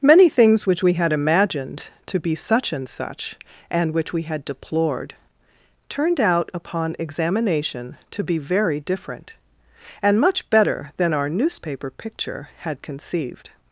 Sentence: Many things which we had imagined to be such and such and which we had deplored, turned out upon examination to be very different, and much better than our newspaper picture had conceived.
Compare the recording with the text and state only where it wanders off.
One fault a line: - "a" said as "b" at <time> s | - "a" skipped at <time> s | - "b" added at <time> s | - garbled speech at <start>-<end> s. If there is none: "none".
none